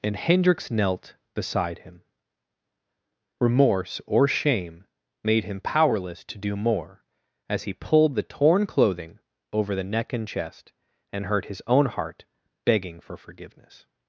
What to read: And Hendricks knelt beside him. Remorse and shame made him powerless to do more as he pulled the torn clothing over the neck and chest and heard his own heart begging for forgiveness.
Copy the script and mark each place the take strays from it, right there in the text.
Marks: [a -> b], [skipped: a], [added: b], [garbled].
And Hendricks knelt beside him. Remorse [and -> or] shame made him powerless to do more as he pulled the torn clothing over the neck and chest and heard his own heart begging for forgiveness.